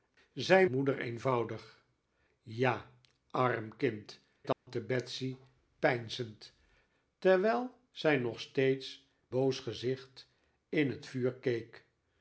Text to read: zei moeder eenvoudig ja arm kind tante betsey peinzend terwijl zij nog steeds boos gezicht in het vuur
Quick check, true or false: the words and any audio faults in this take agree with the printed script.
false